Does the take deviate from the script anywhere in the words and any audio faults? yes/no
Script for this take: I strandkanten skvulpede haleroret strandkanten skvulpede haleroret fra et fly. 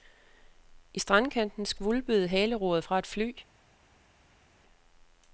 yes